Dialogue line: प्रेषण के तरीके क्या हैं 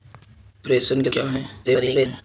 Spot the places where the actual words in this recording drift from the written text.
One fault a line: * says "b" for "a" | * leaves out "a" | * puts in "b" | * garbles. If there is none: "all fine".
* leaves out "तरीके"
* garbles